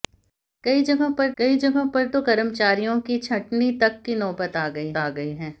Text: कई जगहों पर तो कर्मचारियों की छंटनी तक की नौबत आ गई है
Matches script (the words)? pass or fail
fail